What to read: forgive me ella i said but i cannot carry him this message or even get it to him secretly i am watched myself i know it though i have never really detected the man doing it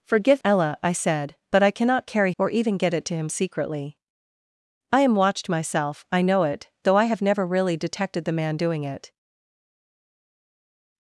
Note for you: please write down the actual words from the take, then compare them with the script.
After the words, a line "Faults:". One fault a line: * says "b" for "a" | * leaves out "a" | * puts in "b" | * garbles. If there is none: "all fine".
forgive ella i said but i cannot carry or even get it to him secretly i am watched myself i know it though i have never really detected the man doing it
Faults:
* leaves out "me"
* leaves out "him this message"